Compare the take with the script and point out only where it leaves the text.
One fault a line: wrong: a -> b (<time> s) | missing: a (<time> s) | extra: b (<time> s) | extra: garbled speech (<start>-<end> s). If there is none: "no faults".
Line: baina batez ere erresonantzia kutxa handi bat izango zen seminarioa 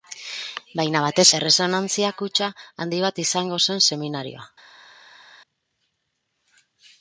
missing: ere (1.2 s)